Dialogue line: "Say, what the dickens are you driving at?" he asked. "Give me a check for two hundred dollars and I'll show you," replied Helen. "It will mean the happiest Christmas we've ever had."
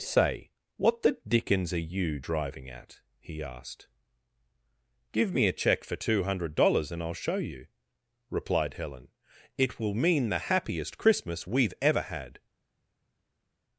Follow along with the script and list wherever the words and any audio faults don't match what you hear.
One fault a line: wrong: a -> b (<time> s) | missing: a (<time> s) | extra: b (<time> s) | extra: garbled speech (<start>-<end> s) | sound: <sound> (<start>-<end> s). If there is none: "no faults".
no faults